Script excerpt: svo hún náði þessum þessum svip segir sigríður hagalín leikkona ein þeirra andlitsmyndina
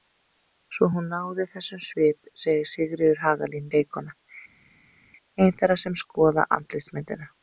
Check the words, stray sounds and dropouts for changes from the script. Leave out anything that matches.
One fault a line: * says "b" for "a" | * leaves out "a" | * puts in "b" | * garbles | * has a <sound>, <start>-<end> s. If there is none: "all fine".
* leaves out "þessum"
* puts in "sem skoða"